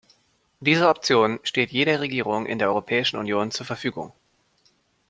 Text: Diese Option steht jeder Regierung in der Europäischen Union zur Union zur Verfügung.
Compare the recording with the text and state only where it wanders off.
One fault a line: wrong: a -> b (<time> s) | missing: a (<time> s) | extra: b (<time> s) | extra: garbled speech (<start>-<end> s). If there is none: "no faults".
missing: Union zur (3.7 s)